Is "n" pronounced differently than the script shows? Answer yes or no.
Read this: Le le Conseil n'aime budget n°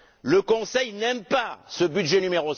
no